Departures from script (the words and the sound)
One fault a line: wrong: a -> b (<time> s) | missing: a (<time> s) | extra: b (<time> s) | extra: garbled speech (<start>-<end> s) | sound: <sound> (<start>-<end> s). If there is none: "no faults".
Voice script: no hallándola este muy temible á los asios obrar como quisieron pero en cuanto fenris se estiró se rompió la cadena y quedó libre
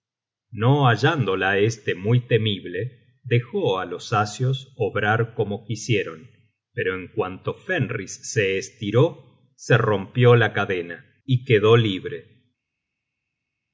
extra: dejó (3.2 s)